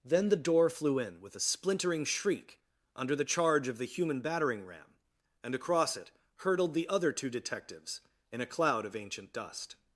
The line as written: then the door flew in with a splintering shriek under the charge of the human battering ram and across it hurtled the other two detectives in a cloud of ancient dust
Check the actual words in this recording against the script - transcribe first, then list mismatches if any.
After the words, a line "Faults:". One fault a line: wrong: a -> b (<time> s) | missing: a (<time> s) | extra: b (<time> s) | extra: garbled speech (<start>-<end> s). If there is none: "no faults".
then the door flew in with a splintering shriek under the charge of the human battering ram and across it hurtled the other two detectives in a cloud of ancient dust
Faults:
no faults